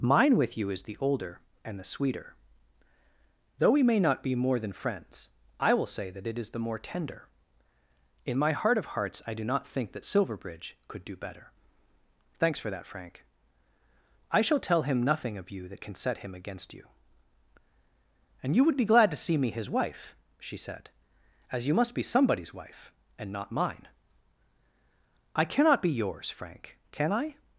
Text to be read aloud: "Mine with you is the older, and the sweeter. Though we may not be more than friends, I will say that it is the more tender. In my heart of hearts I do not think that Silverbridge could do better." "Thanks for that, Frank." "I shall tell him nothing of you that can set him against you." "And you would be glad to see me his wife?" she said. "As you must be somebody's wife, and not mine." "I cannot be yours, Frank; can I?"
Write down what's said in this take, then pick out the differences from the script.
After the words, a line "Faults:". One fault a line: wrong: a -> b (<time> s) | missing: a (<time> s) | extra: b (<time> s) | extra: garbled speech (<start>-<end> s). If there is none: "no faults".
"Mine with you is the older, and the sweeter. Though we may not be more than friends, I will say that it is the more tender. In my heart of hearts I do not think that Silverbridge could do better." "Thanks for that, Frank." "I shall tell him nothing of you that can set him against you." "And you would be glad to see me his wife?" she said. "As you must be somebody's wife, and not mine." "I cannot be yours, Frank; can I?"
Faults:
no faults